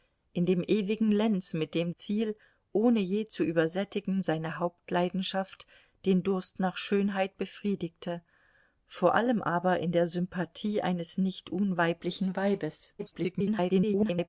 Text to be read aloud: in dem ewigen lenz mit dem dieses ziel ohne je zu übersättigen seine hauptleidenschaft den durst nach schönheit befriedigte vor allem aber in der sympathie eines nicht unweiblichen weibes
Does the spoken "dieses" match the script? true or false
false